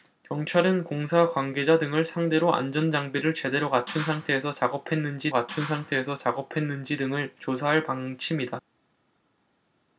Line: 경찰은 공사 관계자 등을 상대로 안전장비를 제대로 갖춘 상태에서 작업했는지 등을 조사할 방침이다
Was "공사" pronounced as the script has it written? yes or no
yes